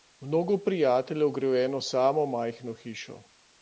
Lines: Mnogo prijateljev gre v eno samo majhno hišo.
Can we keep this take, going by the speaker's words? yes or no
yes